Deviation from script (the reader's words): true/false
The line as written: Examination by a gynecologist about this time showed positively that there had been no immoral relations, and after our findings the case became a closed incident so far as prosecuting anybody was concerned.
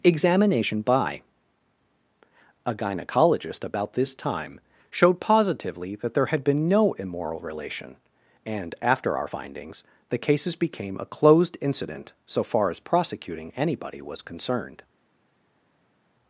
true